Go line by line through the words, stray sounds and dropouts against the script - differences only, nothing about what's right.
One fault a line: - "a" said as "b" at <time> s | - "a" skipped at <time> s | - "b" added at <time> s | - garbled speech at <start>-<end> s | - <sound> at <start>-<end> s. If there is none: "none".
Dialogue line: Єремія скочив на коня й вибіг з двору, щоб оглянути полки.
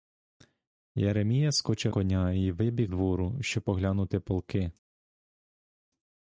- "на" skipped at 1.9 s
- "з" skipped at 2.9 s